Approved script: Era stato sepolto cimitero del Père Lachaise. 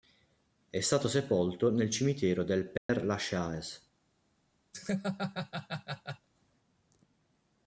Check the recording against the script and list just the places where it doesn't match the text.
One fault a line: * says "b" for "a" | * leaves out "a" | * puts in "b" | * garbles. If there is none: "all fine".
* says "È" for "Era"
* puts in "nel"